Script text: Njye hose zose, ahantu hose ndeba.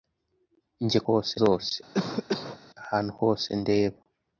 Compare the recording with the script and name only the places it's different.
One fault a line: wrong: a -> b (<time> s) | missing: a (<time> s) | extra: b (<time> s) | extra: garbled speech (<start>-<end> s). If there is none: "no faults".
no faults